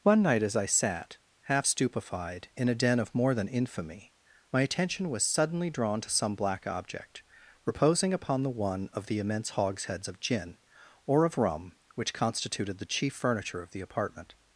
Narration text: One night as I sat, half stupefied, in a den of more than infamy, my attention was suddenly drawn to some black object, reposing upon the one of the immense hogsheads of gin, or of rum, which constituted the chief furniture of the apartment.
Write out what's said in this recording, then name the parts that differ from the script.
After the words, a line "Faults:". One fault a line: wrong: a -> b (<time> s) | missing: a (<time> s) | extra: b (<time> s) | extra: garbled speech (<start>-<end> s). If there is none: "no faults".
One night as I sat, half stupefied, in a den of more than infamy, my attention was suddenly drawn to some black object, reposing upon the one of the immense hogsheads of gin, or of rum, which constituted the chief furniture of the apartment.
Faults:
no faults